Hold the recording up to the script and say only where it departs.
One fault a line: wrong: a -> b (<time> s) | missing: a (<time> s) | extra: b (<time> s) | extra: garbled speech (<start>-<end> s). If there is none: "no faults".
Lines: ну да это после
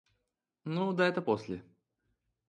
no faults